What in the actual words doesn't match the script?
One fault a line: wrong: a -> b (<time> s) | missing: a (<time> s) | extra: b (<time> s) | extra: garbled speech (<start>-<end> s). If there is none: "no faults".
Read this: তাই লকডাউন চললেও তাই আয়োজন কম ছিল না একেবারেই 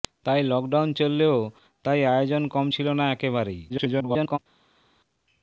extra: garbled speech (3.7-4.4 s)